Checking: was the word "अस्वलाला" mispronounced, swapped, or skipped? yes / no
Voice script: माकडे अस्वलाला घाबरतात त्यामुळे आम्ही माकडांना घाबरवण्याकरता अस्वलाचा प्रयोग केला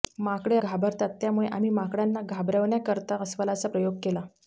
yes